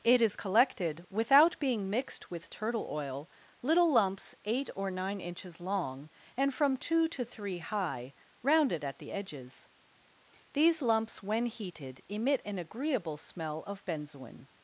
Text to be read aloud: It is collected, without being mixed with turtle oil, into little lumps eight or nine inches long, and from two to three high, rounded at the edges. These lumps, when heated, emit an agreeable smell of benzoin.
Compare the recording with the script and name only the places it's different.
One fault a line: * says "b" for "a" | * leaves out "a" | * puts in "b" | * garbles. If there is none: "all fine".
* leaves out "into"